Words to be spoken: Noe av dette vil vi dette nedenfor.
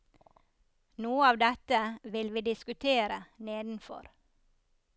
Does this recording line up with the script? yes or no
no